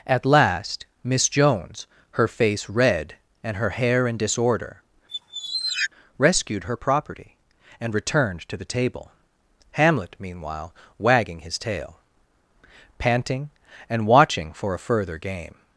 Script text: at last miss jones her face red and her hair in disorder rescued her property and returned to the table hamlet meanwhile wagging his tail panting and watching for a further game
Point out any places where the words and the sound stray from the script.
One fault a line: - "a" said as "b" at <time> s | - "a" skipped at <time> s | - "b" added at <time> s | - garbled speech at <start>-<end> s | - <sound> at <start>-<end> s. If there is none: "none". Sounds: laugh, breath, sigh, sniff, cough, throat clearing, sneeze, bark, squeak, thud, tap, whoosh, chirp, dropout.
- squeak at 5.1-5.9 s